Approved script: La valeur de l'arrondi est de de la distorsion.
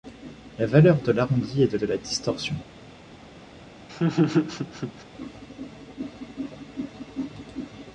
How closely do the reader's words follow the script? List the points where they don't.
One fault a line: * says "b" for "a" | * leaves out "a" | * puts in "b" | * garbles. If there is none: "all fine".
all fine